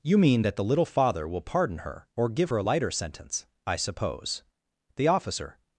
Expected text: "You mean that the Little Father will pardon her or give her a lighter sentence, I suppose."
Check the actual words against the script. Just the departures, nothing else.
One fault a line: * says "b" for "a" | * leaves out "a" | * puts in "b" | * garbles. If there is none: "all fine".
* puts in "The officer"